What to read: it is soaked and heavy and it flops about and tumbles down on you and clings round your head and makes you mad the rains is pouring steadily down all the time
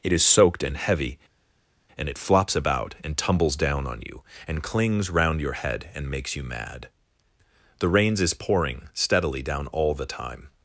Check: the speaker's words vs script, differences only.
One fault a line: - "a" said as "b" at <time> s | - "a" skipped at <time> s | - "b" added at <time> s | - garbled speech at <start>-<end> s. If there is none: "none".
none